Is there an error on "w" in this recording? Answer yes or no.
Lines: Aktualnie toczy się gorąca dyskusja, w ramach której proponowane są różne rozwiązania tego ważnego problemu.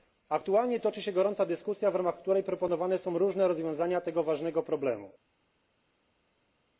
no